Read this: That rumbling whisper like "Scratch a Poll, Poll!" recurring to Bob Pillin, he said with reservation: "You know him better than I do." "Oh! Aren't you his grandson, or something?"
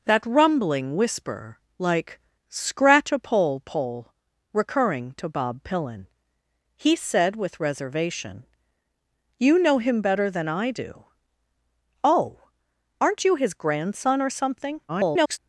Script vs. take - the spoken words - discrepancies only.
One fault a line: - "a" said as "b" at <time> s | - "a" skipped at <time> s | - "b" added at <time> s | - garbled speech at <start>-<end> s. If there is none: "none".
- garbled speech at 14.9-15.4 s